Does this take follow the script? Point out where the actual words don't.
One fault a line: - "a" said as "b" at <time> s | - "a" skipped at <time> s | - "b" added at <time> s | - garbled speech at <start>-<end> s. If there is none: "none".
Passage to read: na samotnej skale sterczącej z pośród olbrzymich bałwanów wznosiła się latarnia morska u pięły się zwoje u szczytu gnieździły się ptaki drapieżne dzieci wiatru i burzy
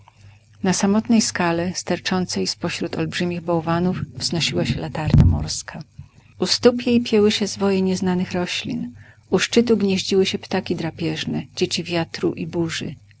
- "stóp jej" added at 6.5 s
- "nieznanych roślin" added at 7.8 s